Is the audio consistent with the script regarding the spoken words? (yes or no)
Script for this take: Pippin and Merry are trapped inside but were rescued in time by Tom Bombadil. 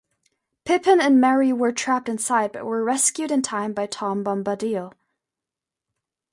no